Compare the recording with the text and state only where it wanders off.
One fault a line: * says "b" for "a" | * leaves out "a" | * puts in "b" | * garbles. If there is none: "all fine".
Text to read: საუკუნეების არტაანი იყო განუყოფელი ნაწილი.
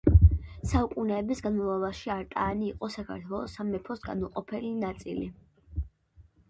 * puts in "განმავლობაში"
* puts in "საქართველოს სამეფოს"